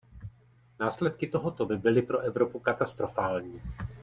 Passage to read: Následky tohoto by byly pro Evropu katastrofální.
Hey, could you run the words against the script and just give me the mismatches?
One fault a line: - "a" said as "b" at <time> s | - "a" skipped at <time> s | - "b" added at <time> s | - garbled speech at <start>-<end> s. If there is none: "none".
none